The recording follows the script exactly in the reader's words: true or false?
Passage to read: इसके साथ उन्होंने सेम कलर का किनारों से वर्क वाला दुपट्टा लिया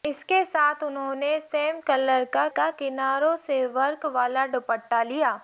false